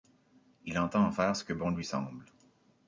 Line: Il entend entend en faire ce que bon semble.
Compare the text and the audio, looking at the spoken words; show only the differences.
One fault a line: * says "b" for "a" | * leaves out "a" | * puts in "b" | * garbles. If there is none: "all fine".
* leaves out "entend"
* puts in "lui"